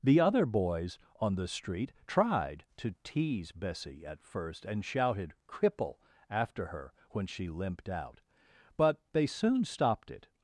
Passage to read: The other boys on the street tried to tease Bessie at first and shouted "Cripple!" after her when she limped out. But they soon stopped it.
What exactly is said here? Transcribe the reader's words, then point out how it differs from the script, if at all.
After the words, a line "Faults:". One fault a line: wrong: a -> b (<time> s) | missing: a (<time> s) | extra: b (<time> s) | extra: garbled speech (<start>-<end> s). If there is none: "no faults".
The other boys on the street tried to tease Bessie at first and shouted "Cripple!" after her when she limped out. But they soon stopped it.
Faults:
no faults